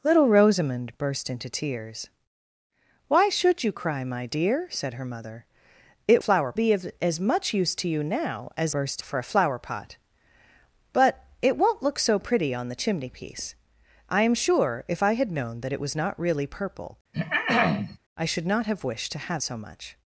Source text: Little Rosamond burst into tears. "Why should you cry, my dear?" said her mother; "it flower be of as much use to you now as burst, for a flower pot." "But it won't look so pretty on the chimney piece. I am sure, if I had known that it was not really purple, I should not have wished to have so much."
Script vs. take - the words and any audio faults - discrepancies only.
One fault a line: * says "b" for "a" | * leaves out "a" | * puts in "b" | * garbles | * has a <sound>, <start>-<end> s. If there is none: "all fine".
* has a throat clearing, 17.1-18.0 s